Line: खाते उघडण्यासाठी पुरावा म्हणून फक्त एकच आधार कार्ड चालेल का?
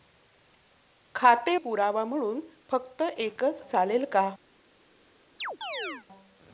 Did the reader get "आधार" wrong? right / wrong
wrong